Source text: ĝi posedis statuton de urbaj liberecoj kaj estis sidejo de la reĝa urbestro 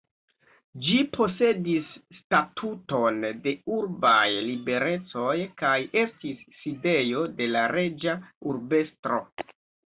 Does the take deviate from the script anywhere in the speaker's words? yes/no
no